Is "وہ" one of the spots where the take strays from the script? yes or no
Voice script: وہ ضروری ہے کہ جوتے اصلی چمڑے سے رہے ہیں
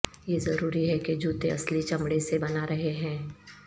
yes